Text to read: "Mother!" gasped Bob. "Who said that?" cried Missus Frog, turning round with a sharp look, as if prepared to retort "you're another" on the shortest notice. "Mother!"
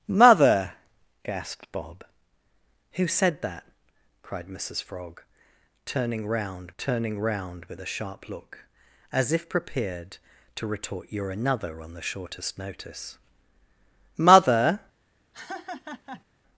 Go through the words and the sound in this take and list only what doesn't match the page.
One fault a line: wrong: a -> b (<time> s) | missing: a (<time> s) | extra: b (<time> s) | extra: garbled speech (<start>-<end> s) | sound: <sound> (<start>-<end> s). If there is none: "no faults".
extra: turning round (6.8 s)
sound: laugh (15.3-16.2 s)